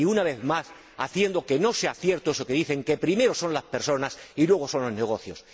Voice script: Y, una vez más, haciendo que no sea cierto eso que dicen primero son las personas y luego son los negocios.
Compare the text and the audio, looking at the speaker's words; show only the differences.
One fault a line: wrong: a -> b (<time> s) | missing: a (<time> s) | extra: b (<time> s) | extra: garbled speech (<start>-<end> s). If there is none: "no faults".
extra: que (2.8 s)